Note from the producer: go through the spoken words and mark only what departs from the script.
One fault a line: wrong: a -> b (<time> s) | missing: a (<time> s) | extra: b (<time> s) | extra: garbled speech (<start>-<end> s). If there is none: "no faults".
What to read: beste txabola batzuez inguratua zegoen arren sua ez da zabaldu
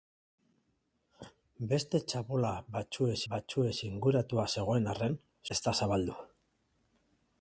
extra: batzuez (3.3 s)
missing: sua (5.2 s)